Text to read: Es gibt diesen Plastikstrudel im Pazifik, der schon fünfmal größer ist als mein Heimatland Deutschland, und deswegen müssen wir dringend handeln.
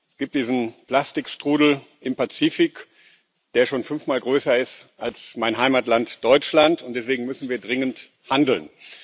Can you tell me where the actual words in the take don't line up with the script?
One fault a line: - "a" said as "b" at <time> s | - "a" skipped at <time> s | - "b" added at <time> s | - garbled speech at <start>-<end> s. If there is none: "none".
none